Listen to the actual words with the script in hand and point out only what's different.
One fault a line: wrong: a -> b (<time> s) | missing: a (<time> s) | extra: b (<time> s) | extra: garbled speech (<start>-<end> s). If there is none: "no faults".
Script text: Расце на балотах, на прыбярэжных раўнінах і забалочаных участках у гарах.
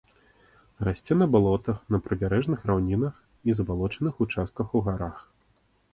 no faults